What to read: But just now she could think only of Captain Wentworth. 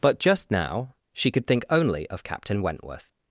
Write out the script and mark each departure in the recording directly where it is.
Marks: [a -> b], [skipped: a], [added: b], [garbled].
But just now she could think only of Captain Wentworth.